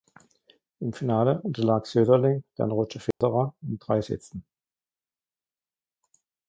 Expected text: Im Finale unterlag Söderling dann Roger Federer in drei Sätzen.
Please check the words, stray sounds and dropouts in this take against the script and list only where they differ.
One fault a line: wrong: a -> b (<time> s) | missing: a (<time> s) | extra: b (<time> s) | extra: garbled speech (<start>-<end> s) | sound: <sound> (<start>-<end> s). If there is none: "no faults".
sound: dropout (3.1-3.2 s)